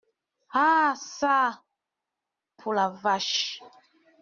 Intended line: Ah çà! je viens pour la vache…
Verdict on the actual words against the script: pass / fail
fail